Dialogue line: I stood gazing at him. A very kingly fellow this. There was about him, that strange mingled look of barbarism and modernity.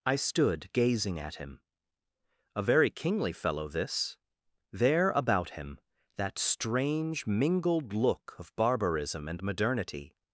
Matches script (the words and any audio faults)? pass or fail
fail